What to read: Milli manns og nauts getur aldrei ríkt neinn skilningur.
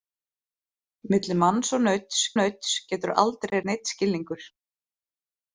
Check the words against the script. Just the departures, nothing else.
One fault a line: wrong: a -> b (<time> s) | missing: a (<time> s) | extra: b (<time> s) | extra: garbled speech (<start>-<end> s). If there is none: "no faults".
extra: nauts (2.4 s)
missing: ríkt (3.6 s)